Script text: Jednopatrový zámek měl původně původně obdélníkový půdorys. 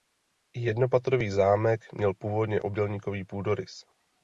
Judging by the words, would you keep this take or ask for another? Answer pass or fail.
fail